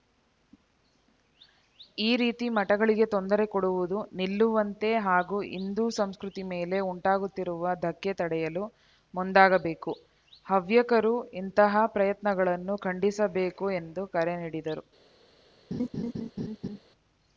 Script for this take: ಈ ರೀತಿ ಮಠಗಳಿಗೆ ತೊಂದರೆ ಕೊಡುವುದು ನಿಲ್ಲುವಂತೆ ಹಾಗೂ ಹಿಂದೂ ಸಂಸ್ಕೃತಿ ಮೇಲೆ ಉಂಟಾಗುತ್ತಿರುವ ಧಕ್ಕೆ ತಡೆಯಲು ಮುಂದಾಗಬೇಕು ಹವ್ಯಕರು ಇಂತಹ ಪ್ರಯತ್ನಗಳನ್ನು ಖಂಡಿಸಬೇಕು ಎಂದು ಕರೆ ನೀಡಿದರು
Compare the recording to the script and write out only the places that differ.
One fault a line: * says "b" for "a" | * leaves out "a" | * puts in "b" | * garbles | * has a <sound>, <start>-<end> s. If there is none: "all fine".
* has a laugh, 15.7-16.8 s